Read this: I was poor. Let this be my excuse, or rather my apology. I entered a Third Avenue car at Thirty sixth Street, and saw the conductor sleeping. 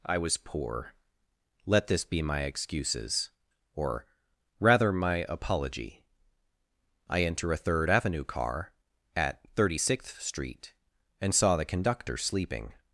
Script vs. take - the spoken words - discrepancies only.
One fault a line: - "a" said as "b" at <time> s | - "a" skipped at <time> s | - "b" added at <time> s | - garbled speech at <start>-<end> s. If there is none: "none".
- "excuse" said as "excuses" at 2.4 s
- "entered" said as "enter" at 7.2 s